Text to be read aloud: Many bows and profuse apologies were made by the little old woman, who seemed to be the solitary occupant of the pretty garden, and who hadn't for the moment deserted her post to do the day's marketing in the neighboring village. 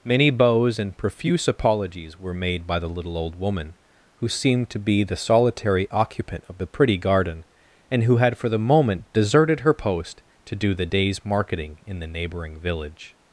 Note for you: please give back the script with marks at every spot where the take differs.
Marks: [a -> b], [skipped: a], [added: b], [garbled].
Many bows and profuse apologies were made by the little old woman, who seemed to be the solitary occupant of the pretty garden, and who [hadn't -> had] for the moment deserted her post to do the day's marketing in the neighboring village.